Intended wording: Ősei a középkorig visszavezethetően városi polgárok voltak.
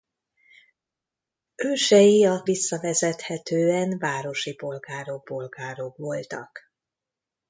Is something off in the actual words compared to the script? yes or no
yes